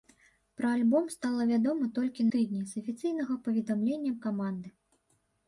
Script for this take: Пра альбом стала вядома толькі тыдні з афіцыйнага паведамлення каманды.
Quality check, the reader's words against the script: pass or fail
pass